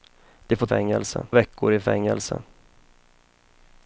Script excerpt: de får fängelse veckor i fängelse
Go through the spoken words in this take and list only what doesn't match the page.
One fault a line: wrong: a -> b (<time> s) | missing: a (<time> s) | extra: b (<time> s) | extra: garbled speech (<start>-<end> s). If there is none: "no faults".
no faults